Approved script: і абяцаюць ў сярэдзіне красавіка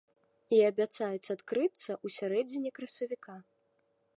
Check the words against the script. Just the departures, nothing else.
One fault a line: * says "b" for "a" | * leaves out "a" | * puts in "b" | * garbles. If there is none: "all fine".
* puts in "адкрыцца"